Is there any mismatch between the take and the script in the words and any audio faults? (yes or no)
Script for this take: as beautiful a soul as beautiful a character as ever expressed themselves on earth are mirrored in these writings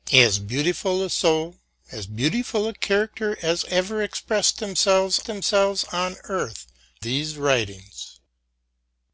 yes